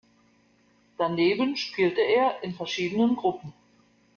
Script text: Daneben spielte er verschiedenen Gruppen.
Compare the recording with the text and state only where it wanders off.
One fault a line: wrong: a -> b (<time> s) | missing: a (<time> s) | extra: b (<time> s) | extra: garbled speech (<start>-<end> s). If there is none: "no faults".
extra: in (2.4 s)